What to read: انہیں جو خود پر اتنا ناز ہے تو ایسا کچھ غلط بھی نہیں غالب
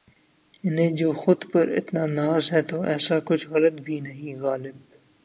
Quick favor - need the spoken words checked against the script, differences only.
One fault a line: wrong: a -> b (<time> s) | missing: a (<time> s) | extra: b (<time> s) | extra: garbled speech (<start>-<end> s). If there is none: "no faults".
no faults